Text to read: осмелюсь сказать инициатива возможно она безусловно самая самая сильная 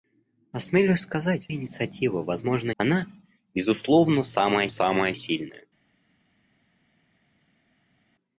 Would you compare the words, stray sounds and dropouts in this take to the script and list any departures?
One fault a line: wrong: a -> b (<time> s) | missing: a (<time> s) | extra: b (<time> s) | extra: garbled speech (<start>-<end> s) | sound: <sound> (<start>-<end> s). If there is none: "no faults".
no faults